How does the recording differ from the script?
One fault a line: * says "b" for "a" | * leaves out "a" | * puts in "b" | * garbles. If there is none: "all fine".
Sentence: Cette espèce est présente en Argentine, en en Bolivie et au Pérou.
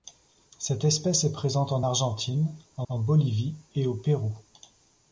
all fine